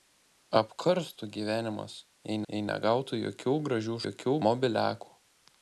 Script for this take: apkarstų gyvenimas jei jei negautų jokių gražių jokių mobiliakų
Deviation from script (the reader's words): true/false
false